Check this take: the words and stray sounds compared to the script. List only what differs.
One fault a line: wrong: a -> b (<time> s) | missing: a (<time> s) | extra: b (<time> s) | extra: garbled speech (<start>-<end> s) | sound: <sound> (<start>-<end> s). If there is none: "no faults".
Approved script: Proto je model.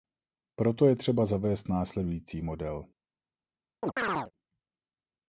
extra: třeba zavést následující (0.9 s)
sound: chirp (3.8-4.3 s)